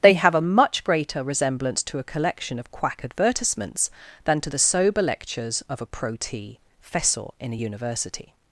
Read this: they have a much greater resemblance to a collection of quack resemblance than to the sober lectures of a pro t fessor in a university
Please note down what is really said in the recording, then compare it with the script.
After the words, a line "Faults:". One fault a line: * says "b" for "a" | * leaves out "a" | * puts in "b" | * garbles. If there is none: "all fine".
they have a much greater resemblance to a collection of quack advertisements than to the sober lectures of a pro t fessor in a university
Faults:
* says "advertisements" for "resemblance"